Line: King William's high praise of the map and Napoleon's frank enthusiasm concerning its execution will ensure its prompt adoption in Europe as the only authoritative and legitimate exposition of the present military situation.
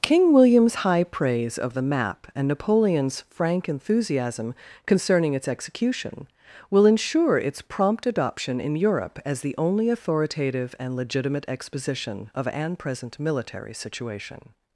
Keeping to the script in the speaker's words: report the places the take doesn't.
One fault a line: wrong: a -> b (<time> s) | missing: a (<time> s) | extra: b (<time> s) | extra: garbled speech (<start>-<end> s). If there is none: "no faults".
wrong: the -> an (12.5 s)